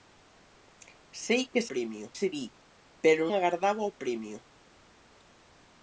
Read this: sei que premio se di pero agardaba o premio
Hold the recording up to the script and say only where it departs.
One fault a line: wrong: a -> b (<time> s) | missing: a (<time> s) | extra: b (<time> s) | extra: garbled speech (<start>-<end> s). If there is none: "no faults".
no faults